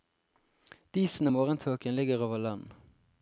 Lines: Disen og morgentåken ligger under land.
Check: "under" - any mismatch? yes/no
yes